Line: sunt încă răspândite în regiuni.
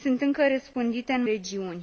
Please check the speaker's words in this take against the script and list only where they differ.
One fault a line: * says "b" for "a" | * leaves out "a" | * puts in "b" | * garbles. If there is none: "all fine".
all fine